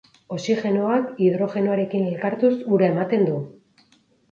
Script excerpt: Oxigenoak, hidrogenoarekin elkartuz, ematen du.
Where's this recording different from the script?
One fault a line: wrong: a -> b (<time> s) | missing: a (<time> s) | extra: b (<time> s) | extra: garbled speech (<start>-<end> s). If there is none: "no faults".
extra: ura (2.8 s)